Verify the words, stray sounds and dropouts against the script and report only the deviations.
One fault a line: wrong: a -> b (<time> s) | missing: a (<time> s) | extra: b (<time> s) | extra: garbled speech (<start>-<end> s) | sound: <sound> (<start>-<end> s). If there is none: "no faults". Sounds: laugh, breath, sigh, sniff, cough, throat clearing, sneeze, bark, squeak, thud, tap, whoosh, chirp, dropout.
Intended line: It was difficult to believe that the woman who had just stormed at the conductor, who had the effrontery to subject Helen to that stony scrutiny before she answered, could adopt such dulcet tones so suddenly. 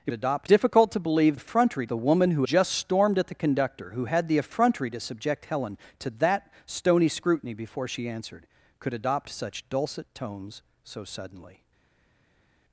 wrong: was -> adopt (0.1 s)
wrong: that -> effrontery (1.3 s)
missing: had (2.4 s)